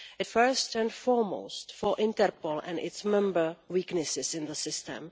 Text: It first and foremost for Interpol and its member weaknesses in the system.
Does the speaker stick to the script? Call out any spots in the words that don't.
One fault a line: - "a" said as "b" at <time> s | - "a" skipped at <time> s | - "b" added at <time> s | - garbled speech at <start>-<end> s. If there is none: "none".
none